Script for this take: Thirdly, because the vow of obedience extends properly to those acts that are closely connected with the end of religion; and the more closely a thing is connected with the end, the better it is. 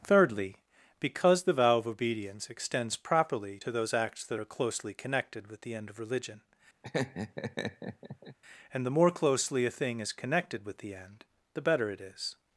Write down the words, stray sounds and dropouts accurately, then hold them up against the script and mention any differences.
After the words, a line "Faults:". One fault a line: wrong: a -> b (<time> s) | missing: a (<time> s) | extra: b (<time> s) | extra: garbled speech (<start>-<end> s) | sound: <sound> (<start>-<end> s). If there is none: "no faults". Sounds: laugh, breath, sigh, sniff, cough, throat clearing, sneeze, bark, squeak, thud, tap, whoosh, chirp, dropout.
Thirdly, because the vow of obedience extends properly to those acts that are closely connected with the end of religion; and the more closely a thing is connected with the end, the better it is.
Faults:
sound: laugh (6.8-8.4 s)